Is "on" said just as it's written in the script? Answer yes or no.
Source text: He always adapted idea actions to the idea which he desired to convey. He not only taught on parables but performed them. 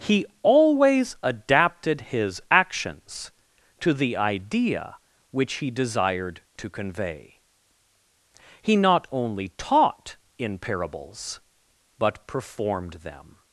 no